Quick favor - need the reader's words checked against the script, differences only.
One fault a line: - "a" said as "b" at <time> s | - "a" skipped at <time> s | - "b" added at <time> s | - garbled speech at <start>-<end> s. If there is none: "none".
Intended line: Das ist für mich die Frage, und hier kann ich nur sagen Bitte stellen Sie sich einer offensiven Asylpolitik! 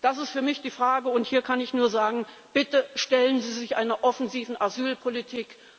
none